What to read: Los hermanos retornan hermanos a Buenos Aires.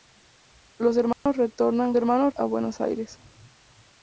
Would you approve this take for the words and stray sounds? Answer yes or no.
no